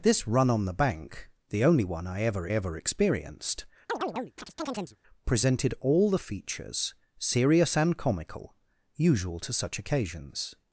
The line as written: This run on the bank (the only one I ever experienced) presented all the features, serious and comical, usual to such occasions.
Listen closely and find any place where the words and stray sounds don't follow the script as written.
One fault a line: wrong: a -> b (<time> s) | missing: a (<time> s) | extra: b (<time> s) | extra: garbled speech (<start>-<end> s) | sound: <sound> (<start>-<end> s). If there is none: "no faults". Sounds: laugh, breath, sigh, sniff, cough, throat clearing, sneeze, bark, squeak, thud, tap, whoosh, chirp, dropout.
extra: ever (2.5 s)
sound: chirp (3.9-5.0 s)